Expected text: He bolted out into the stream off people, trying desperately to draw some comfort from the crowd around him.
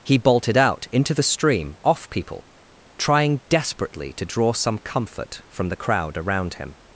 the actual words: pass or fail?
pass